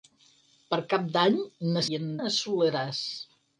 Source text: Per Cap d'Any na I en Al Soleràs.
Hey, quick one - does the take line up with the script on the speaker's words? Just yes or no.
yes